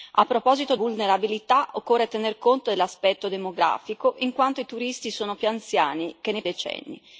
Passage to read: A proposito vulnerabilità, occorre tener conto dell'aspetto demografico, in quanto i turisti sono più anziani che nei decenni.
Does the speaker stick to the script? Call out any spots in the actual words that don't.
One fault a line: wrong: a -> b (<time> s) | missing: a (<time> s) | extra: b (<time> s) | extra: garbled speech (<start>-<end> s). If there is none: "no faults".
no faults